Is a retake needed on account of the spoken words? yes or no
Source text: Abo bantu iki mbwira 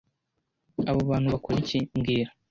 yes